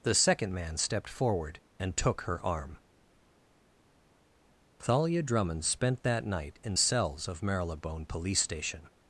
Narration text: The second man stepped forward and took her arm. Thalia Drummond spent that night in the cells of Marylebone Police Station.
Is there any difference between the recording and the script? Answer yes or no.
yes